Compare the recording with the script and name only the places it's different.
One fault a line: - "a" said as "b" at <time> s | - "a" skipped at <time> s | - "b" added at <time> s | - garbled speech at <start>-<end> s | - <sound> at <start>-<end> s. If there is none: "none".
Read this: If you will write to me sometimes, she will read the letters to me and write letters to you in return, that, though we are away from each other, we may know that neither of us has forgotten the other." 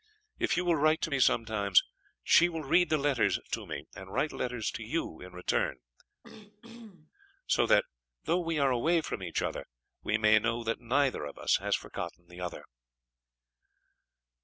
- throat clearing at 6.2-7.1 s
- "so" added at 7.5 s